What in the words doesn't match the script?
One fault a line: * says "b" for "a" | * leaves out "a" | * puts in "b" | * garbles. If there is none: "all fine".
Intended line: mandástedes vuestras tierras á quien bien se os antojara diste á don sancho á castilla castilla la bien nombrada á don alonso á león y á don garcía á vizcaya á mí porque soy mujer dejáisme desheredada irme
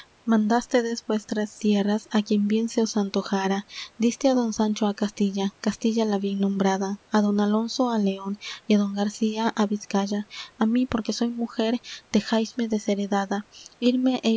all fine